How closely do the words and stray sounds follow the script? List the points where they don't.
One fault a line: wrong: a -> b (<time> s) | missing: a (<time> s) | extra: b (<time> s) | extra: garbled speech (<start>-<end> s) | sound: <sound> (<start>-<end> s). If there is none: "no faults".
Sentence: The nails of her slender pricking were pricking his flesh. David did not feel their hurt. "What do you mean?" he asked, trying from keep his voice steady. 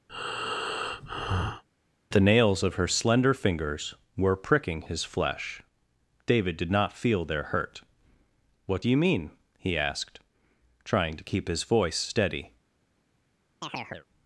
sound: breath (0.1-1.6 s)
wrong: pricking -> fingers (3.3 s)
wrong: from -> to (11.1 s)
sound: chirp (13.6-14.1 s)